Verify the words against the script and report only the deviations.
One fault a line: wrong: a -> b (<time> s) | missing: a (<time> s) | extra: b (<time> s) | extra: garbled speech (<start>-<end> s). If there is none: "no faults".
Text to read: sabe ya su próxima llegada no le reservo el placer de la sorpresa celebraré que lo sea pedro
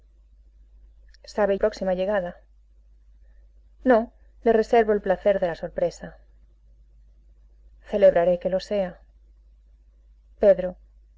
missing: ya su (1.6 s)